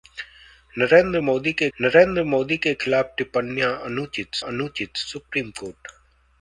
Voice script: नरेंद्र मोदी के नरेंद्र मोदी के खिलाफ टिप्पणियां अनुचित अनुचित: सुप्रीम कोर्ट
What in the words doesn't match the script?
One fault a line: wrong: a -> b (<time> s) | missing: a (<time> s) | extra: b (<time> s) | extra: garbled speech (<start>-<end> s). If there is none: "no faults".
no faults